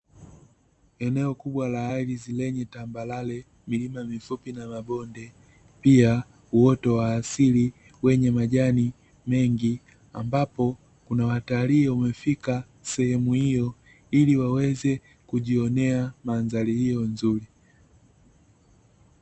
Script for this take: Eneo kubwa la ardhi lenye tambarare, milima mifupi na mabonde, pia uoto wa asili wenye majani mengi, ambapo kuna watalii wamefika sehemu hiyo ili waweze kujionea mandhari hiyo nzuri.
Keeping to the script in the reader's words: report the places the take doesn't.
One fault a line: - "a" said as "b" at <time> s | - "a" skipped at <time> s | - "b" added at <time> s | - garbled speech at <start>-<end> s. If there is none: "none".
none